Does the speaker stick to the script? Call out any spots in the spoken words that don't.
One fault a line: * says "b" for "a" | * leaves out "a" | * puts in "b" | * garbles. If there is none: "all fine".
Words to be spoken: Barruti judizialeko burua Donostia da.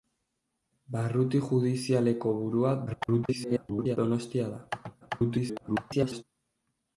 * garbles
* garbles